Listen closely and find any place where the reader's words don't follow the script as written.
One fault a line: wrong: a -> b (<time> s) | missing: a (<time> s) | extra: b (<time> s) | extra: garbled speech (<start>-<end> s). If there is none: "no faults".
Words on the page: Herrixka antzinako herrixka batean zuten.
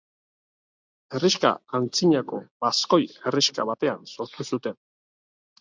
extra: baskoi (2.7 s)
extra: sortu (4.2 s)